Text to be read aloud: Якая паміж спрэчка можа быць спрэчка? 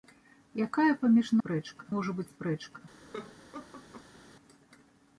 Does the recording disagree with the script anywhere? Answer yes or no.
no